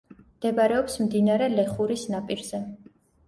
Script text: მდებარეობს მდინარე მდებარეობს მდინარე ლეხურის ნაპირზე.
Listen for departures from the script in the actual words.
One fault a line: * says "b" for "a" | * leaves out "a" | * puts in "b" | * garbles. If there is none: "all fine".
* leaves out "მდებარეობს მდინარე"